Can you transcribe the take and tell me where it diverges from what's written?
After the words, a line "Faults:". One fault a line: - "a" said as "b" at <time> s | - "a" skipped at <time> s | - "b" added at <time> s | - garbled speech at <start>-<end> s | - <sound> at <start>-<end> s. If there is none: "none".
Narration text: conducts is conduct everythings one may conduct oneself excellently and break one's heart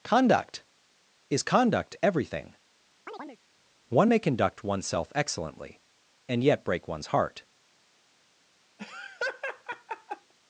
conduct is conduct everything one may conduct oneself excellently and yet break one's heart
Faults:
- "conducts" said as "conduct" at 0.0 s
- "everythings" said as "everything" at 2.0 s
- chirp at 3.1-3.4 s
- "yet" added at 6.4 s
- laugh at 8.8-10.3 s